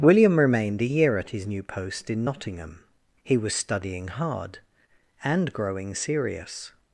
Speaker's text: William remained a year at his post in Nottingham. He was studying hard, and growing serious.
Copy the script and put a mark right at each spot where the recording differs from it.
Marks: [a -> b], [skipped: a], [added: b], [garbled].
William remained a year at his [added: new] post in Nottingham. He was studying hard, and growing serious.